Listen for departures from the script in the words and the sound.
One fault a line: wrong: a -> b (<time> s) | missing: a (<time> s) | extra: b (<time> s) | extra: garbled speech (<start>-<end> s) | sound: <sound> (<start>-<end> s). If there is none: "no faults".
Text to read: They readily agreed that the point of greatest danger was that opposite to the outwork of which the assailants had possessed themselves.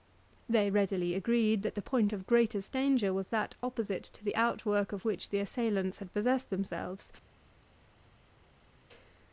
no faults